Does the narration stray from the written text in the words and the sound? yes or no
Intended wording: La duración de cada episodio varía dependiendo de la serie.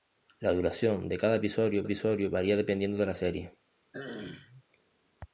yes